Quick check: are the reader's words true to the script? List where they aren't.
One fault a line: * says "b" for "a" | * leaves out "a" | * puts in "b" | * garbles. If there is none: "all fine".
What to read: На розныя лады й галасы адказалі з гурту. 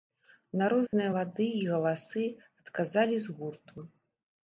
all fine